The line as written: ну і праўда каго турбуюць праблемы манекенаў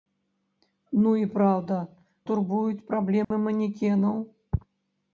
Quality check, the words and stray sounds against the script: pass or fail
fail